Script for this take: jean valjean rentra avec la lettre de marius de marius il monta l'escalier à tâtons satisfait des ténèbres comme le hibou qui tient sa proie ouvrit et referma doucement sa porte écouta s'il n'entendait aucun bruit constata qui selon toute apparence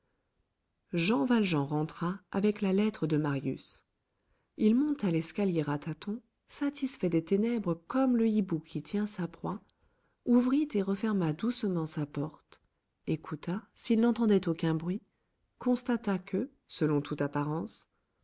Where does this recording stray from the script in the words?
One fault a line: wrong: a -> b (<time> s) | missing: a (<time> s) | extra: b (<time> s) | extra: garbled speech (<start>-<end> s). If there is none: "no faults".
missing: de marius (3.9 s)
wrong: qui -> que (16.2 s)